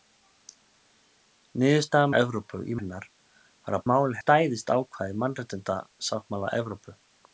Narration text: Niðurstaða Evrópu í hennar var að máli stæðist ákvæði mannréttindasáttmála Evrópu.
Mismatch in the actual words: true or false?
false